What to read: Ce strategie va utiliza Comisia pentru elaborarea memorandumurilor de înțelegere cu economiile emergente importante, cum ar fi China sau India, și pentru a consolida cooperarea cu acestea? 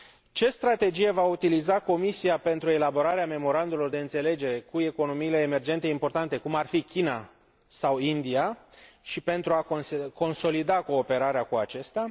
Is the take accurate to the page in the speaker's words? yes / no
yes